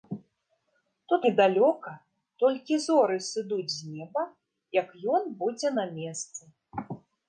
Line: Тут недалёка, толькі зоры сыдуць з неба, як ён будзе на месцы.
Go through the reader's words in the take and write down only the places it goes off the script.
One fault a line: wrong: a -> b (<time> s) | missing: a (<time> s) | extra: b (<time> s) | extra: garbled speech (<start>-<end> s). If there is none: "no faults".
no faults